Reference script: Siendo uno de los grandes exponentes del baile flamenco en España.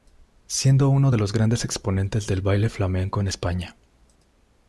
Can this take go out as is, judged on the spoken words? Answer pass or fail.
pass